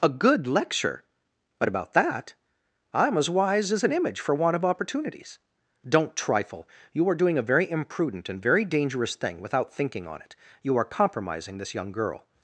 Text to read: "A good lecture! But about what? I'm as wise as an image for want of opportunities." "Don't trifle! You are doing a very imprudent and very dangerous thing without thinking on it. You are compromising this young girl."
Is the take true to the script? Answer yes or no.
no